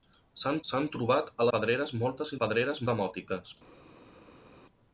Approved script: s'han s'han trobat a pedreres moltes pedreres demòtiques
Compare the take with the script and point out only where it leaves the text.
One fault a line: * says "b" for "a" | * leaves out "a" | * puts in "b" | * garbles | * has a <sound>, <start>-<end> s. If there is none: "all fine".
all fine